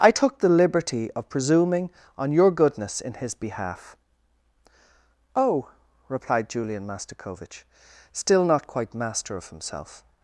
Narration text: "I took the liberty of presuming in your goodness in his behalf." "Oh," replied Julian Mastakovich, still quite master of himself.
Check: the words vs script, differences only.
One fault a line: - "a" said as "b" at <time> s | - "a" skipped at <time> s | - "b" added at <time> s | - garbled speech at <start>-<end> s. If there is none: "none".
- "in" said as "on" at 2.2 s
- "not" added at 8.5 s